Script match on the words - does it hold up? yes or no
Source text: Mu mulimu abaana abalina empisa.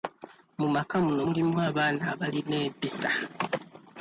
no